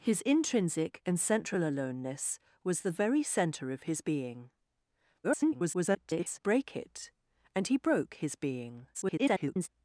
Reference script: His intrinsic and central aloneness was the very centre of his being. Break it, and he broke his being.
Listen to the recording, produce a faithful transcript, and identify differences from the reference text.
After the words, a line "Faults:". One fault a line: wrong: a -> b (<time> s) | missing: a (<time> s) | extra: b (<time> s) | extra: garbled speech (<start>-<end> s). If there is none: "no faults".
His intrinsic and central aloneness was the very centre of his being. [garbled] Break it, and he broke his being. [garbled]
Faults:
extra: garbled speech (5.2-6.4 s)
extra: garbled speech (8.9-9.7 s)